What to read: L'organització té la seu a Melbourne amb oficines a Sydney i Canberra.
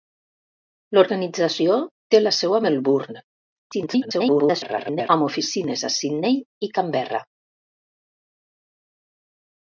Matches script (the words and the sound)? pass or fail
fail